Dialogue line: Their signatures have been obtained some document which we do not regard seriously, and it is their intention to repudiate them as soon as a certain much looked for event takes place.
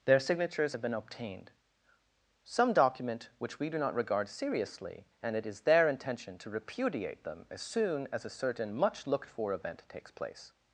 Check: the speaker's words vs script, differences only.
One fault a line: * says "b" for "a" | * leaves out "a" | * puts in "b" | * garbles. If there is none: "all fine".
all fine